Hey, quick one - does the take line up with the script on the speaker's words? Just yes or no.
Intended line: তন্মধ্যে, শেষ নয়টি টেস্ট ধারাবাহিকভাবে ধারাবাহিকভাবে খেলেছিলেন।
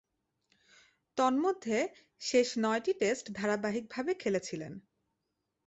no